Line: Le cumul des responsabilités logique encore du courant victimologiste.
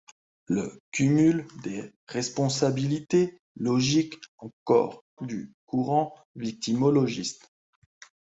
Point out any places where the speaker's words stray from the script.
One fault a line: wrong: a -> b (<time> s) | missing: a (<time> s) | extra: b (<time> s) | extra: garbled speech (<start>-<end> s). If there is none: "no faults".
no faults